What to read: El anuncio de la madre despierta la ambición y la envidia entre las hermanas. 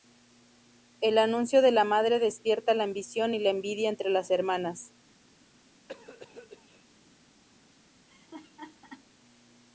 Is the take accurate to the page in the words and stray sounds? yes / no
no